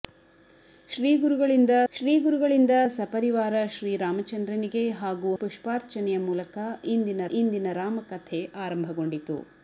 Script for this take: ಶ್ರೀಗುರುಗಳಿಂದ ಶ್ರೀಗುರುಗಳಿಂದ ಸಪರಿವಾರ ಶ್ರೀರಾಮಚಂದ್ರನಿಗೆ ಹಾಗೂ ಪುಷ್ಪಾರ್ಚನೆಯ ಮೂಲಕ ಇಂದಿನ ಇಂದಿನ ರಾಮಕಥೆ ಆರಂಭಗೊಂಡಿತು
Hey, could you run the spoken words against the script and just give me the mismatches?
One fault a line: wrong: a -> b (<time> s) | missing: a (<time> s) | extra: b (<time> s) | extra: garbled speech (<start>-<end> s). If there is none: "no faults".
no faults